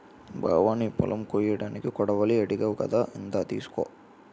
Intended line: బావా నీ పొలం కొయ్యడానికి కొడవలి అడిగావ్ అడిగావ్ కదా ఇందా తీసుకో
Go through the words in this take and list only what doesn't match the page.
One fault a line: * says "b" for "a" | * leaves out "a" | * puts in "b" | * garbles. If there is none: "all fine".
* leaves out "అడిగావ్"